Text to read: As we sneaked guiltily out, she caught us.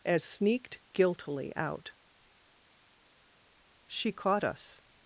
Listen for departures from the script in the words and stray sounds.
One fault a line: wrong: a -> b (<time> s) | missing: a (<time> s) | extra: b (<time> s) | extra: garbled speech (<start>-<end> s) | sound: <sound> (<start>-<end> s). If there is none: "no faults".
missing: we (0.2 s)